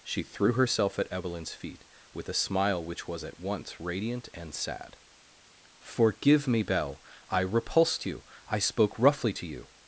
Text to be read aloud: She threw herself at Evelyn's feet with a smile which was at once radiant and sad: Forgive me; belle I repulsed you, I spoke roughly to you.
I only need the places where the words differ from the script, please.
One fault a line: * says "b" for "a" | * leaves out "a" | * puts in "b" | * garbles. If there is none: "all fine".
all fine